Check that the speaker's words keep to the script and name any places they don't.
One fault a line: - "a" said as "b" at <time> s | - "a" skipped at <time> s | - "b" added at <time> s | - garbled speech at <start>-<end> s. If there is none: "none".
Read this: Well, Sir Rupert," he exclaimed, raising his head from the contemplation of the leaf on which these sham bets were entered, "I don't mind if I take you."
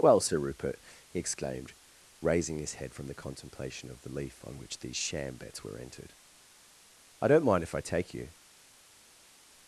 none